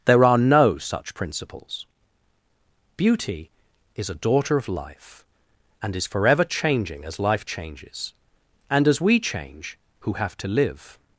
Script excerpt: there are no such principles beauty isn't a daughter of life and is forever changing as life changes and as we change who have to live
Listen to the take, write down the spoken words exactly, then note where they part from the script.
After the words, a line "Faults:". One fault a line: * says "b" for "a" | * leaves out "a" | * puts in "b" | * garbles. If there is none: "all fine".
there are no such principles beauty is a daughter of life and is forever changing as life changes and as we change who have to live
Faults:
* says "is" for "isn't"